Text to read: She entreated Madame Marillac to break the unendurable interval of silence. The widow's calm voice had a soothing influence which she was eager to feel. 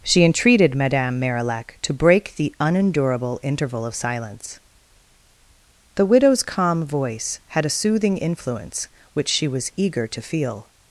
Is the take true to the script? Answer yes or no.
yes